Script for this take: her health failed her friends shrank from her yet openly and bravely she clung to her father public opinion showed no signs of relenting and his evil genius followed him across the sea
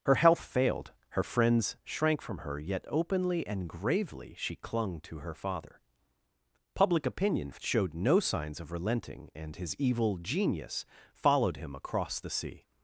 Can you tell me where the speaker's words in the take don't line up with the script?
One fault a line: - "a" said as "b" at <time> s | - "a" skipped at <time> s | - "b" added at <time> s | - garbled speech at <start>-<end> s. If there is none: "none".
- "bravely" said as "gravely" at 3.7 s